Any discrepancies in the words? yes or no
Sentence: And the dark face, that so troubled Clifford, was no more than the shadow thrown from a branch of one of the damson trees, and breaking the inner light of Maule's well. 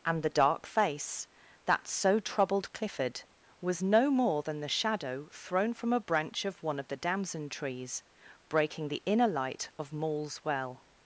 yes